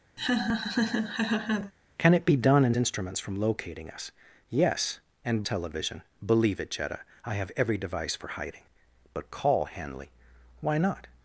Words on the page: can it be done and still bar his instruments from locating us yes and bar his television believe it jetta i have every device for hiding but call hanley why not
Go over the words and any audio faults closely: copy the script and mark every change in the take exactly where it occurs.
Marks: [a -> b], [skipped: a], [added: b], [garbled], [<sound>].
[laugh] can it be done and [skipped: still bar his] instruments from locating us yes and [skipped: bar his] television believe it jetta i have every device for hiding but call hanley why not